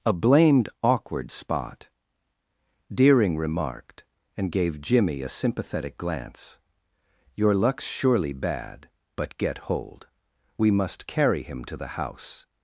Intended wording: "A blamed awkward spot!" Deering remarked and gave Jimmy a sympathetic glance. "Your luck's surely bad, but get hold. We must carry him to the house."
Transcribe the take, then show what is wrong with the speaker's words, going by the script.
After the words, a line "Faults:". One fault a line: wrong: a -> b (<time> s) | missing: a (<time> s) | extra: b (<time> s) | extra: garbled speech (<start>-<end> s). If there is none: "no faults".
"A blamed awkward spot!" Deering remarked and gave Jimmy a sympathetic glance. "Your luck's surely bad, but get hold. We must carry him to the house."
Faults:
no faults